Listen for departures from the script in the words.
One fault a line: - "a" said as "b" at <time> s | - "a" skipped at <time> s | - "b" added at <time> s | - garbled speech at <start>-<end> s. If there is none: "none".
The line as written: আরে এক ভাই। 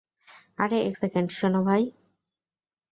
- "সেকেন্ড শোনো" added at 0.9 s